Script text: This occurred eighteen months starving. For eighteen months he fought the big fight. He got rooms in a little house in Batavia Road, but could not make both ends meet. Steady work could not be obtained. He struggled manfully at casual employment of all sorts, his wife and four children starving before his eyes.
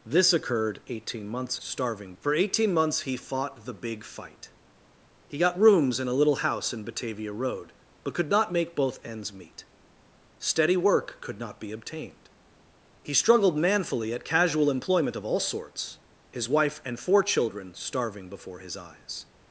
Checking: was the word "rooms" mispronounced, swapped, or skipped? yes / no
no